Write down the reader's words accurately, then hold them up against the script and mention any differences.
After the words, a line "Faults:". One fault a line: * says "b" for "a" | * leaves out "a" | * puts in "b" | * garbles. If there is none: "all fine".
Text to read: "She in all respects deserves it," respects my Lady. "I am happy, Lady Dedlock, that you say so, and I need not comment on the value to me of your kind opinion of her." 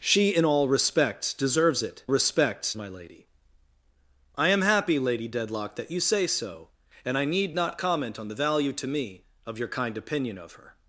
"She in all respects deserves it," respects my Lady. "I am happy, Lady Dedlock, that you say so, and I need not comment on the value to me of your kind opinion of her."
Faults:
all fine